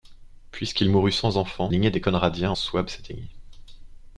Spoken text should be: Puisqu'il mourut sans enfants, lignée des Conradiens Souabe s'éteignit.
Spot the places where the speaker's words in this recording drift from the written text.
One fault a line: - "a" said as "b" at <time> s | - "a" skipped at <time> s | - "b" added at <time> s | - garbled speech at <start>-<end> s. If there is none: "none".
none